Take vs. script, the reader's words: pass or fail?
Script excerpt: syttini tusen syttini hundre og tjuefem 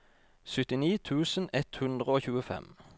fail